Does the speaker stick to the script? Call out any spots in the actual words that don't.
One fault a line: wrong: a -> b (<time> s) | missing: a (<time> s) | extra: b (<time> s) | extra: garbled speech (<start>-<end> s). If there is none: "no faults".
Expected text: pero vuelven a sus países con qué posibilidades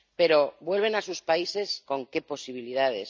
no faults